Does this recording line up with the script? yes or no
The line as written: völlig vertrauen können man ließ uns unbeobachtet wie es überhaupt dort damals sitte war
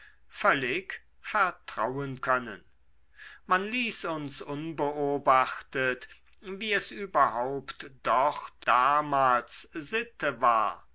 yes